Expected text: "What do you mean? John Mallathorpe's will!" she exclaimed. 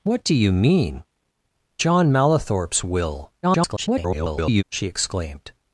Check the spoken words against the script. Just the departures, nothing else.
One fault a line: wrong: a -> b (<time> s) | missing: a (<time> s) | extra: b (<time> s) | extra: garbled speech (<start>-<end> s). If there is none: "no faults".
extra: garbled speech (3.4-4.6 s)